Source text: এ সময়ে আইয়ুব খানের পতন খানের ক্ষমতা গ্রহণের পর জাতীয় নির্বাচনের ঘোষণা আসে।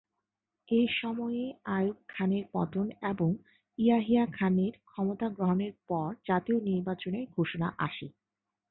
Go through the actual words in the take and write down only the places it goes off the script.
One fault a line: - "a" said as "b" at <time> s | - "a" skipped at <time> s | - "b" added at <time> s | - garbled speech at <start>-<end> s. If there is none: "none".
- "এবং ইয়াহিয়া" added at 3.1 s